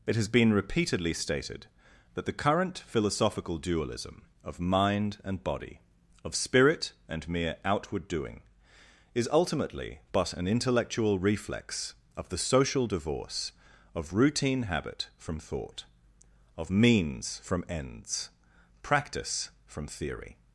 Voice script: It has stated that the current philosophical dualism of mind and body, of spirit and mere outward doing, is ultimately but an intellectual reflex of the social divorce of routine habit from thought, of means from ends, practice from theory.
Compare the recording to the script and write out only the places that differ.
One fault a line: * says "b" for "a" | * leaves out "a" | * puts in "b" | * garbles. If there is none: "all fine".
* puts in "been repeatedly"